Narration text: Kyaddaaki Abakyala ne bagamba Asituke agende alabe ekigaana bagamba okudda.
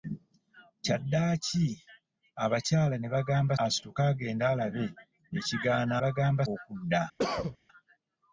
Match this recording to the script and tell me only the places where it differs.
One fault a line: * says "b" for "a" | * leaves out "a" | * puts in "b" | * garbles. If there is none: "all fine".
all fine